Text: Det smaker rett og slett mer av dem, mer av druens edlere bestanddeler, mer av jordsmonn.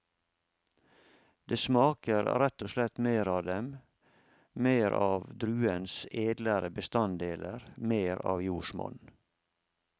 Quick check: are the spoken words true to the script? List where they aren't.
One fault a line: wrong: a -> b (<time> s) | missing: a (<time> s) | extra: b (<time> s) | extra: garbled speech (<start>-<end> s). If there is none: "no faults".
no faults